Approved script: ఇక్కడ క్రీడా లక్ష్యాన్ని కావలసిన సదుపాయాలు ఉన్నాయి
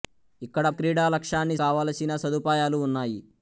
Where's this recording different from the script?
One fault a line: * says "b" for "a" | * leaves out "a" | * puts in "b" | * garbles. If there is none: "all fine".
all fine